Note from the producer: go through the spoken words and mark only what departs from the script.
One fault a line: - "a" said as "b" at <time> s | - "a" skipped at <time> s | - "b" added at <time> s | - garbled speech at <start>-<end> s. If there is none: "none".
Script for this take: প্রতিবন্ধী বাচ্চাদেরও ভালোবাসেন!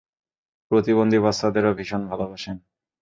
- "ভীষণ" added at 1.8 s